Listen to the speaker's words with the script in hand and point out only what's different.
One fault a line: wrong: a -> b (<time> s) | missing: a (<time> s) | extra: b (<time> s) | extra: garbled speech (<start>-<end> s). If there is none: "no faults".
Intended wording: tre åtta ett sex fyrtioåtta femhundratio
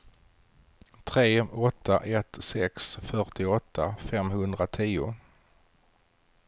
no faults